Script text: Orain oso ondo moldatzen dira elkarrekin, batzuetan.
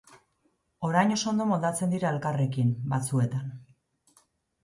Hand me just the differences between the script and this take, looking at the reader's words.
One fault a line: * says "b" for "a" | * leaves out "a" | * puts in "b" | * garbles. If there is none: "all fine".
all fine